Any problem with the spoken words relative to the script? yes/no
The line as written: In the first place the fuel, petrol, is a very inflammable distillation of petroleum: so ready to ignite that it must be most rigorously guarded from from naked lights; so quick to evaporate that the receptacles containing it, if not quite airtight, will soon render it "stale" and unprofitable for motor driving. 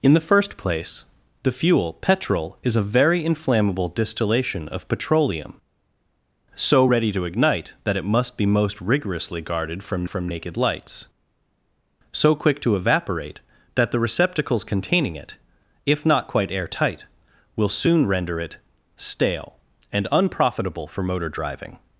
no